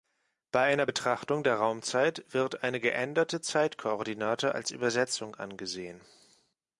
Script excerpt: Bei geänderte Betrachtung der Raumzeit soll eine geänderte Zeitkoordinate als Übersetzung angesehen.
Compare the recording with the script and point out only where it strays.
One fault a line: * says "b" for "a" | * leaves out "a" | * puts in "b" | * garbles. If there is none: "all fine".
* says "einer" for "geänderte"
* says "wird" for "soll"